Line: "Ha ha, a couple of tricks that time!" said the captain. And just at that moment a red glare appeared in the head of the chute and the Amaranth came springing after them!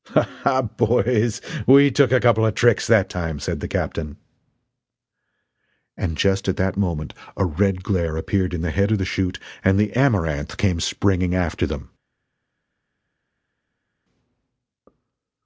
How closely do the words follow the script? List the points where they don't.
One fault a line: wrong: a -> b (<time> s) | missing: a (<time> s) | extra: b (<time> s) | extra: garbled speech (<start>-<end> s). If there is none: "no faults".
extra: boys we took (0.6 s)